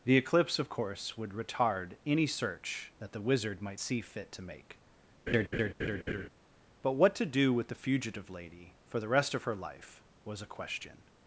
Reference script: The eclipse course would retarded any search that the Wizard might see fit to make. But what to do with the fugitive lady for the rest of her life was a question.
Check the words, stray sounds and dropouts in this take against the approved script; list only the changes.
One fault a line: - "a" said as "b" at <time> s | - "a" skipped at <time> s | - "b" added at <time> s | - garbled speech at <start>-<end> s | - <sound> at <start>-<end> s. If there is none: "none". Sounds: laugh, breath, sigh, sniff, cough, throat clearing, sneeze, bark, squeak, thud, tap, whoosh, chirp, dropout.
- "of" added at 0.6 s
- "retarded" said as "retard" at 1.3 s
- laugh at 5.3-6.3 s